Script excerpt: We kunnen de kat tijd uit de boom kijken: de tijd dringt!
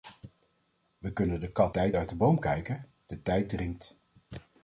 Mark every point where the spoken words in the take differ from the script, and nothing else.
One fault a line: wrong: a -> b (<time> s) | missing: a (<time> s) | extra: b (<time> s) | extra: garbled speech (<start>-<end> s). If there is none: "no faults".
no faults